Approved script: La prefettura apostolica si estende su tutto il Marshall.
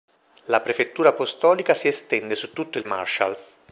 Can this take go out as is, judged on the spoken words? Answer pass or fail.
pass